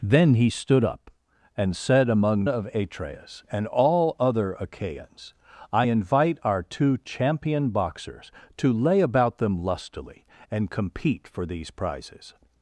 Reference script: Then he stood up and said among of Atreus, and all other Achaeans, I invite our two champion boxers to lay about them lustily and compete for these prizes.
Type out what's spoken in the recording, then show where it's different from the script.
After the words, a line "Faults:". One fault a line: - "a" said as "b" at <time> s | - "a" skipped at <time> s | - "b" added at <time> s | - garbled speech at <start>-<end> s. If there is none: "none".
Then he stood up and said among of Atreus, and all other Achaeans, I invite our two champion boxers to lay about them lustily and compete for these prizes.
Faults:
none